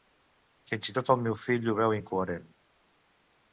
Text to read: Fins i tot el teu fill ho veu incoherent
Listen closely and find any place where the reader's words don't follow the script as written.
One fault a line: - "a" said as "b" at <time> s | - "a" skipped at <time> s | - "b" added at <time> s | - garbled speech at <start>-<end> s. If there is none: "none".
- "teu" said as "meu" at 1.2 s